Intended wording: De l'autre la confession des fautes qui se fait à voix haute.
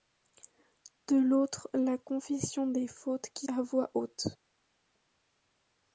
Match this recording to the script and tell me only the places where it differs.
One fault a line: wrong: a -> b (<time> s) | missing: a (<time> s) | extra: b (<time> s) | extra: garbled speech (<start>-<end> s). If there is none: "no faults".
missing: se fait (3.5 s)